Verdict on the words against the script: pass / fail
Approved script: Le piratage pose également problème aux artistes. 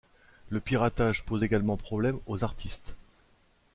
pass